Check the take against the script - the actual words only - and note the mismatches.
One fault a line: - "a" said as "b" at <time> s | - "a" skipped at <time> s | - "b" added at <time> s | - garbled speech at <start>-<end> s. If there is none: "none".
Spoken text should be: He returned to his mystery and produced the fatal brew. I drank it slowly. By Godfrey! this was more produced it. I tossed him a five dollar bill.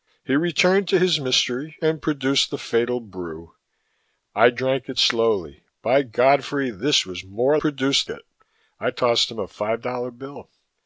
none